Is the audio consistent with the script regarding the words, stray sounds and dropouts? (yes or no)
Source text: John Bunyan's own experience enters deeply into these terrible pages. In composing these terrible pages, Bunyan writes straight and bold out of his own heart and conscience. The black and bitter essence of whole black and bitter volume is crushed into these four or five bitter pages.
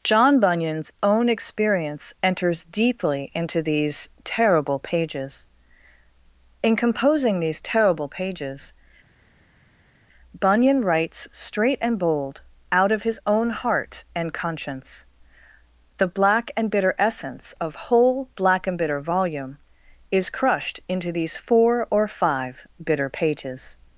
yes